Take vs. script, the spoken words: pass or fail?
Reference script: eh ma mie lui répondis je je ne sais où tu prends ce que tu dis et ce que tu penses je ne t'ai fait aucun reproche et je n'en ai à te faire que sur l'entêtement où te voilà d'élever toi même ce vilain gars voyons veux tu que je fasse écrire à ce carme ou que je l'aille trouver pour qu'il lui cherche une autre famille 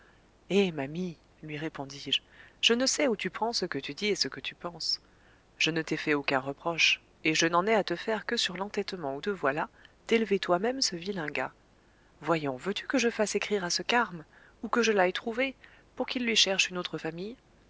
pass